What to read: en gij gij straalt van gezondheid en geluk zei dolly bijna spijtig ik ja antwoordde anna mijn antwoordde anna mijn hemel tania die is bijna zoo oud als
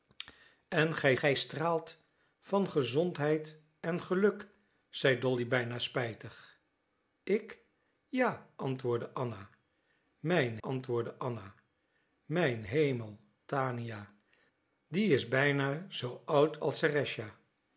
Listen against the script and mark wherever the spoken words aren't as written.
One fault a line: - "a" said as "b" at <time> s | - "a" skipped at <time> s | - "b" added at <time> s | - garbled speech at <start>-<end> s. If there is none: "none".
none